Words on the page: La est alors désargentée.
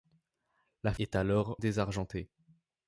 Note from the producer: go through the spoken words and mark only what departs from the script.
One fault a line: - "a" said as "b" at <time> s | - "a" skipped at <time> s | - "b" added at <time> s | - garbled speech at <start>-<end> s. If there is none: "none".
none